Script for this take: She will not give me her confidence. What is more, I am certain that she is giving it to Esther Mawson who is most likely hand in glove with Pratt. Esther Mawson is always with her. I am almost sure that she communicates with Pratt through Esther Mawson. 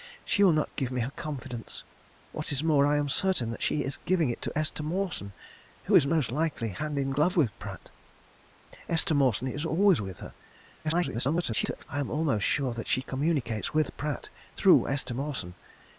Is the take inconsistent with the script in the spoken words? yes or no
yes